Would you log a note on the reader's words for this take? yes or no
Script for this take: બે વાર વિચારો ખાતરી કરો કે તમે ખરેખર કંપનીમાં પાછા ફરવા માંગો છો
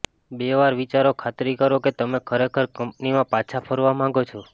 no